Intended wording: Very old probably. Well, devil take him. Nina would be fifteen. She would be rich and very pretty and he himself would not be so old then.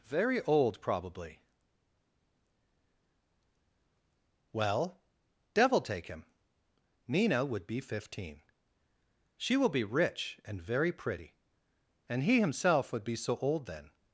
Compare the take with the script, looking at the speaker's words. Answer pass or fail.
fail